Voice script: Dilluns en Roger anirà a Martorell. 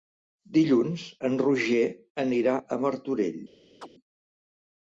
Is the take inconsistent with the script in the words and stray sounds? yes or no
yes